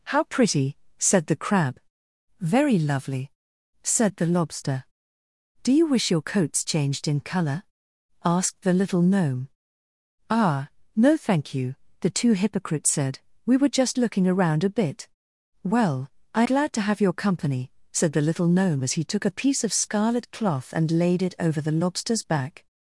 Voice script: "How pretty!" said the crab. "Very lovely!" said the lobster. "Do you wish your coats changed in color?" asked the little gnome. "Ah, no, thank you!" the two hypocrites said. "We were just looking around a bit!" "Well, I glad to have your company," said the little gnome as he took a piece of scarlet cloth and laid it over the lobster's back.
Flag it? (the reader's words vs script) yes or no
no